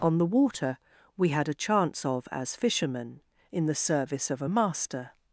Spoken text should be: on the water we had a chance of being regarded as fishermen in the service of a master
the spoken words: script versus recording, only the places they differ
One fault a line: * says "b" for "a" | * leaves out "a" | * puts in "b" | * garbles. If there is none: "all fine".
* leaves out "being regarded"